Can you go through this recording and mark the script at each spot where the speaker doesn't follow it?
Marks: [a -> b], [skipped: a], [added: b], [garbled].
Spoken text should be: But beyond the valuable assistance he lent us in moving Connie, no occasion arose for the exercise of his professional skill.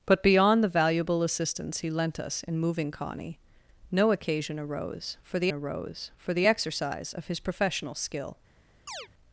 But beyond the valuable assistance he lent us in moving Connie, no occasion arose for the [added: arose for the] exercise of his professional skill.